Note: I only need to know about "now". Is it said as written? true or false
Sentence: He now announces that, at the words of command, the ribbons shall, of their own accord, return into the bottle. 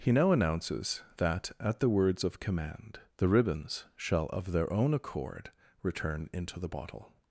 true